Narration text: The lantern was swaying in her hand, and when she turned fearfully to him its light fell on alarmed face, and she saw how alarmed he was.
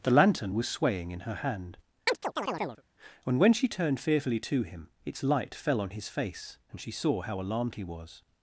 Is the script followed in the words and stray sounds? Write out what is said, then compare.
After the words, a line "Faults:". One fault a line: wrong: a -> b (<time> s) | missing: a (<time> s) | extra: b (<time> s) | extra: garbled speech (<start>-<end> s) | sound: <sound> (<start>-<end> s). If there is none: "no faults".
The lantern was swaying in her hand, and when she turned fearfully to him its light fell on his face, and she saw how alarmed he was.
Faults:
sound: chirp (2.1-2.8 s)
wrong: alarmed -> his (5.9 s)